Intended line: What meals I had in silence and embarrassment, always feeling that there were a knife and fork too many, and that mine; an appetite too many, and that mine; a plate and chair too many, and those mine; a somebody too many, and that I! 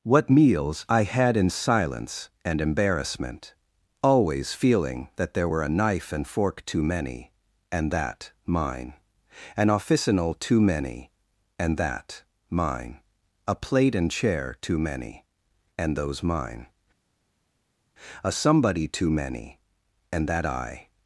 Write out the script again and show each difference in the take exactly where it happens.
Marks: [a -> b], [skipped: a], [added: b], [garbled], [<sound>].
What meals I had in silence and embarrassment, always feeling that there were a knife and fork too many, and that mine; an [appetite -> officinal] too many, and that mine; a plate and chair too many, and those mine; a somebody too many, and that I!